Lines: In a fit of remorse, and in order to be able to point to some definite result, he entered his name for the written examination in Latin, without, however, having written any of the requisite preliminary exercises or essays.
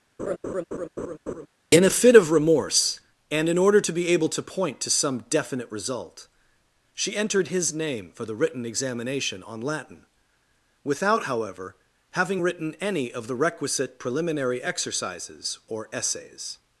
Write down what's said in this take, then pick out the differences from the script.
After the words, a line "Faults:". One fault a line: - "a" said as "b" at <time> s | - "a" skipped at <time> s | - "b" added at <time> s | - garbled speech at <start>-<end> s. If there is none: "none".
In a fit of remorse, and in order to be able to point to some definite result, she entered his name for the written examination on Latin, without, however, having written any of the requisite preliminary exercises or essays.
Faults:
- "he" said as "she" at 6.9 s
- "in" said as "on" at 9.4 s